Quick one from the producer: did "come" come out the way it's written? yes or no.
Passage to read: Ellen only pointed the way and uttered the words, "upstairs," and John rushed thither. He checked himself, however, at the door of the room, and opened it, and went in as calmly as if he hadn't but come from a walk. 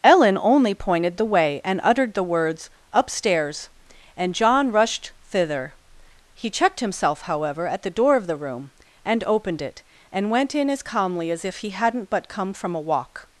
yes